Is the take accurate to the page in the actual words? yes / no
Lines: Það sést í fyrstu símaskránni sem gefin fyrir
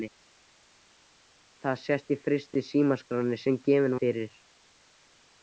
yes